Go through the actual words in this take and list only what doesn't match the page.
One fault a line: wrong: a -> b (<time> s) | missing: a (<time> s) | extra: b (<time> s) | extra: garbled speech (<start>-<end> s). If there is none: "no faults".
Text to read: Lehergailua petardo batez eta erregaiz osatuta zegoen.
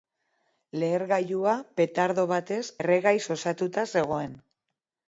missing: eta (2.6 s)